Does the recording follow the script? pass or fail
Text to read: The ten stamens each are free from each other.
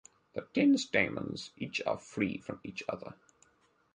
pass